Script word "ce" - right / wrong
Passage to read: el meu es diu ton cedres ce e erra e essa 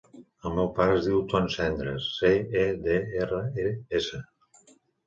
right